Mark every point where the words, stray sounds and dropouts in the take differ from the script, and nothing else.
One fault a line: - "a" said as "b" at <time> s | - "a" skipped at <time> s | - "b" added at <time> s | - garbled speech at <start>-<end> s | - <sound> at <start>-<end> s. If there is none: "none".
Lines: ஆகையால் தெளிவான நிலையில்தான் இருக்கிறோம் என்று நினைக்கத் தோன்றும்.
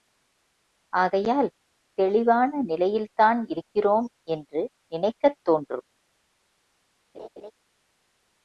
- laugh at 7.1-7.5 s